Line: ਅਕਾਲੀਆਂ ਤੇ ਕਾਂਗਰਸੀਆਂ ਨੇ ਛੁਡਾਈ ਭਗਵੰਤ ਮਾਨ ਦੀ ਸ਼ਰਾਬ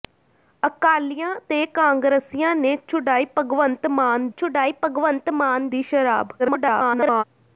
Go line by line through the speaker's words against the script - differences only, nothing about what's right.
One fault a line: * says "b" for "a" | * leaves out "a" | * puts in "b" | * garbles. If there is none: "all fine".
* puts in "ਛੁਡਾਈ ਭਗਵੰਤ ਮਾਨ"
* garbles